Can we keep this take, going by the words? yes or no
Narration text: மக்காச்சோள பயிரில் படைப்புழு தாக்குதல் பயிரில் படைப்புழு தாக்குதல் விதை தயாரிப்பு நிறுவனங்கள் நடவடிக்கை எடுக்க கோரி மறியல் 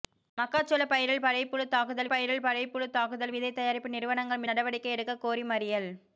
yes